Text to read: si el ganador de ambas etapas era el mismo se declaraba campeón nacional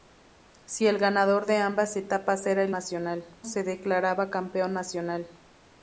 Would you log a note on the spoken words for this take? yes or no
yes